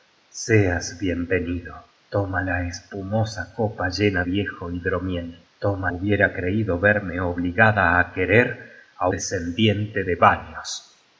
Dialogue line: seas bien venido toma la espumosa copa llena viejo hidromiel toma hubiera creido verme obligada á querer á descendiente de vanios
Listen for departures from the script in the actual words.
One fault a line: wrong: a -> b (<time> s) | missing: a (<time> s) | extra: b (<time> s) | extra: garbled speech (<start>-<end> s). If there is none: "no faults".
no faults